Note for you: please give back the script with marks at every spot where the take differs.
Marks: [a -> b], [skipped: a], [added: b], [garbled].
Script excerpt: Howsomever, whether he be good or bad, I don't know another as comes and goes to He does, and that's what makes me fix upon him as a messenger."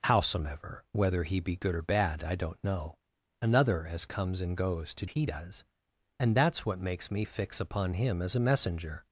Howsomever, whether he be good or bad, I don't know another as comes and goes to He does, and that's what makes me fix upon him as a messenger."